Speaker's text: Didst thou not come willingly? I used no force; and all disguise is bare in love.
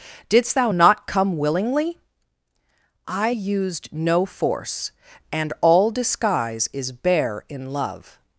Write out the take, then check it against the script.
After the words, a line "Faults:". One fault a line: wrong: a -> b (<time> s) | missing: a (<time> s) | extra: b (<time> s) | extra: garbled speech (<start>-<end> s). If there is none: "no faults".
Didst thou not come willingly? I used no force; and all disguise is bare in love.
Faults:
no faults